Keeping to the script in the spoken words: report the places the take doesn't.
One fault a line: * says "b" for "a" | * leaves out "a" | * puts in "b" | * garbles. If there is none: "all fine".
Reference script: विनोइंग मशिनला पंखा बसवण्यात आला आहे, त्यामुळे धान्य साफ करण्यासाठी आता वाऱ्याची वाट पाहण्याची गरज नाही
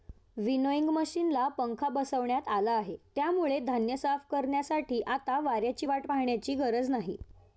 all fine